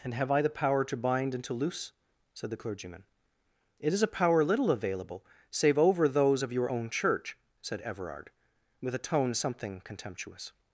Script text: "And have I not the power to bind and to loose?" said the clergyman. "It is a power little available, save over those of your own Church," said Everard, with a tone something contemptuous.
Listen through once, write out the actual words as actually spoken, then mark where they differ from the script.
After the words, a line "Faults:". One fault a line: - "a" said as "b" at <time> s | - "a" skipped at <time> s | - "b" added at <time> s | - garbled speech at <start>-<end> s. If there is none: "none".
"And have I the power to bind and to loose?" said the clergyman. "It is a power little available, save over those of your own Church," said Everard, with a tone something contemptuous.
Faults:
- "not" skipped at 0.4 s